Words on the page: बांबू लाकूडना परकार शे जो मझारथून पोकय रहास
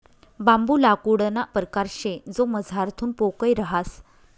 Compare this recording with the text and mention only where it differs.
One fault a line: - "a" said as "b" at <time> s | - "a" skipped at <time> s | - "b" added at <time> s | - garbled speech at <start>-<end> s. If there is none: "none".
none